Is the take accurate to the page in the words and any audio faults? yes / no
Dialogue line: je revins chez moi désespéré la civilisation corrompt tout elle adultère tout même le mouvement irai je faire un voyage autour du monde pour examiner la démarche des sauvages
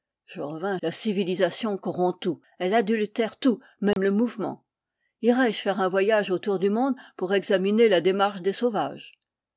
no